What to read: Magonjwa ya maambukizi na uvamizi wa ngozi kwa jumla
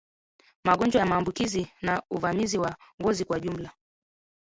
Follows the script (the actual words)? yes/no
yes